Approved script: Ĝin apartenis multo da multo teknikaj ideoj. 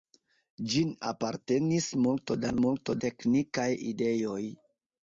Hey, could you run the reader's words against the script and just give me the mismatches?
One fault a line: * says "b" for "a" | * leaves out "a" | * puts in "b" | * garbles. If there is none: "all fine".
all fine